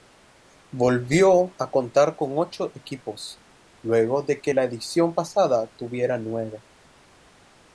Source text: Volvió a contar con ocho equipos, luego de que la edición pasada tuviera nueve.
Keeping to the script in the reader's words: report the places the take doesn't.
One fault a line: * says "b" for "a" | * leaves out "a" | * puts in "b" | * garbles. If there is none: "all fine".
all fine